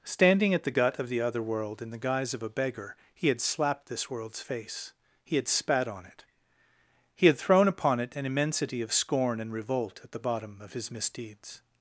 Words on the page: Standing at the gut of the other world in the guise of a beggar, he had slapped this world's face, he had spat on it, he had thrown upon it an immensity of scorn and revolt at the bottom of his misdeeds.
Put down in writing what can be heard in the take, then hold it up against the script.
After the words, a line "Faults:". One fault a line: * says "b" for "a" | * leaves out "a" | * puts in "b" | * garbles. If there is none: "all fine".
Standing at the gut of the other world in the guise of a beggar, he had slapped this world's face, he had spat on it, he had thrown upon it an immensity of scorn and revolt at the bottom of his misdeeds.
Faults:
all fine